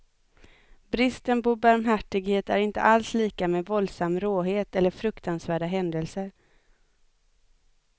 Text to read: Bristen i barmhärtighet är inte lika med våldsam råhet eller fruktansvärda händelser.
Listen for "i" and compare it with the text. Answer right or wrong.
wrong